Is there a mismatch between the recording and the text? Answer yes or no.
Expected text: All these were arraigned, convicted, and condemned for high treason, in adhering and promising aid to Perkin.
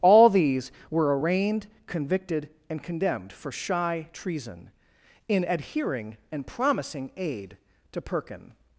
yes